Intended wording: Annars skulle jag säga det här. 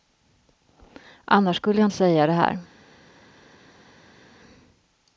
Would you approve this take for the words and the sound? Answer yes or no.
yes